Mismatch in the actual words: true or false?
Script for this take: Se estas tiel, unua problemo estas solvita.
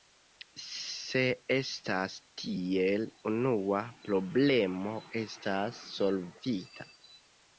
false